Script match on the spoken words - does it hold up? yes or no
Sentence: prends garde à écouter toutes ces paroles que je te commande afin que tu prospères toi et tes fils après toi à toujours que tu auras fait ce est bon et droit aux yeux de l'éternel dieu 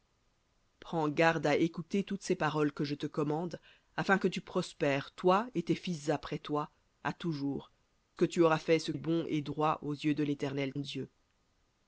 yes